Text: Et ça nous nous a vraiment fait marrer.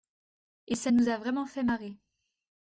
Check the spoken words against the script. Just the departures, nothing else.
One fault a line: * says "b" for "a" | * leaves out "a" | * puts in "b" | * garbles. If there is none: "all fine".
* leaves out "nous"